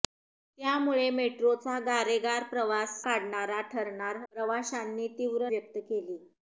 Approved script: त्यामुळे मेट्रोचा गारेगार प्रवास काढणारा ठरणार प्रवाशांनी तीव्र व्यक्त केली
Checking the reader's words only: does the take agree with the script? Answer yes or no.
yes